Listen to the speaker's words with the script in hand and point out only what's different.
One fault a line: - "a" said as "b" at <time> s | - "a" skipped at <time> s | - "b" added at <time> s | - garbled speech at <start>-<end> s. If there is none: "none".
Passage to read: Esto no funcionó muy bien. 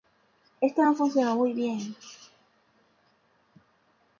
none